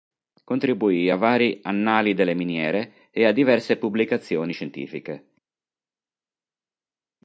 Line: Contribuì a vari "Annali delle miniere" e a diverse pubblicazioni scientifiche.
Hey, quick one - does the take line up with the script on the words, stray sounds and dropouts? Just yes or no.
yes